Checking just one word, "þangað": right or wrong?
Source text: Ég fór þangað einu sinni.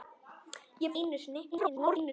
wrong